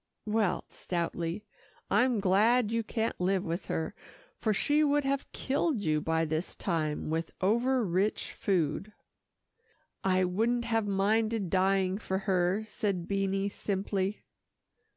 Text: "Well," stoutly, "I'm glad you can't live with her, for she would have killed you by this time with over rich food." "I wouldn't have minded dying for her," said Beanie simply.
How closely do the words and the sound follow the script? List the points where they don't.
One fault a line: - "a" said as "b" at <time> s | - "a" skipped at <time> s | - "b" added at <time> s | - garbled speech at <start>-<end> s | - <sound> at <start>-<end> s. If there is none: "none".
none